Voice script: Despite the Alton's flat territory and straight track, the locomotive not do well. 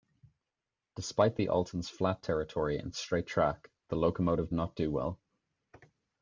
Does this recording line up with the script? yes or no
yes